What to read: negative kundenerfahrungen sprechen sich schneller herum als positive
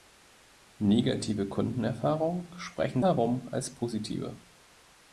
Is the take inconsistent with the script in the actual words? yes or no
yes